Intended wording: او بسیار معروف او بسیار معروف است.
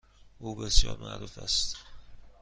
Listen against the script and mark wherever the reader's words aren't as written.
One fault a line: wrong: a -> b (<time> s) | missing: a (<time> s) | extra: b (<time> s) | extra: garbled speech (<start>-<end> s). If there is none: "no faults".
missing: او بسیار معروف (1.4 s)